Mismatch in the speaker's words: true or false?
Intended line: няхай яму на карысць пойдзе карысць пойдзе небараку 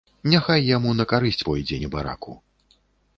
true